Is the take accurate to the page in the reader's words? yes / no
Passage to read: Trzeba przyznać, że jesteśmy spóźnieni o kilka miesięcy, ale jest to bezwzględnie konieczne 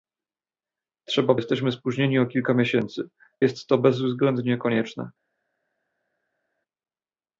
no